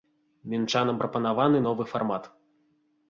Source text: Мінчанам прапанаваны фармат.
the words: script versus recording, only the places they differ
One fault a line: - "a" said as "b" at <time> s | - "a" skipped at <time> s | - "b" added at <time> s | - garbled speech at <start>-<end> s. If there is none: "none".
- "новы" added at 1.7 s